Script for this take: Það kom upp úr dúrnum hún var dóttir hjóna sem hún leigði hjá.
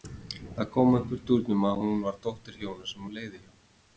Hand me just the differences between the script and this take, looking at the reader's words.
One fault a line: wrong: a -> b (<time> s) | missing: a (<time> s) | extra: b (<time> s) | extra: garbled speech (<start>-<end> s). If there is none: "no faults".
extra: að (1.7 s)